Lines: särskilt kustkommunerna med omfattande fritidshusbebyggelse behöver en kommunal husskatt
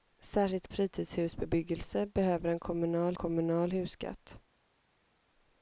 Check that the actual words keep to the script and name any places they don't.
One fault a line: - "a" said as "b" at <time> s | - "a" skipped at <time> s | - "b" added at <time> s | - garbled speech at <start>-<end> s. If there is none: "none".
- "kustkommunerna med omfattande" skipped at 0.7 s
- "kommunal" added at 3.1 s